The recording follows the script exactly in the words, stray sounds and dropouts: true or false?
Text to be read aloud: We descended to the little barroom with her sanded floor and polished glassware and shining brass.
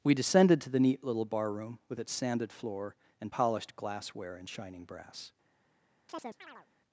false